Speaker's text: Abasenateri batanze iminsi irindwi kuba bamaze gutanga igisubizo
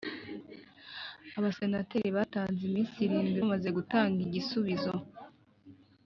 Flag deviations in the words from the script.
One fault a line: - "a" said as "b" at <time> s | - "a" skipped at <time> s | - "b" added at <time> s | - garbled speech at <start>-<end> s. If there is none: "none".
- "kuba" skipped at 3.4 s